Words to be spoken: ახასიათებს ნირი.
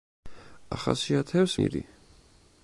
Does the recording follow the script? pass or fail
pass